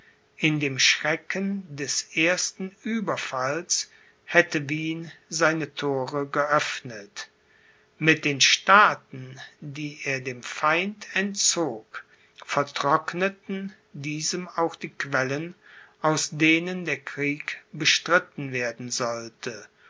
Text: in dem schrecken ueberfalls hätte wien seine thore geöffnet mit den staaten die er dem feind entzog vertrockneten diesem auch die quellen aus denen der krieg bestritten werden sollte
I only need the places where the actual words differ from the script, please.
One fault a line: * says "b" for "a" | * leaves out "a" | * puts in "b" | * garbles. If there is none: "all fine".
* puts in "des ersten"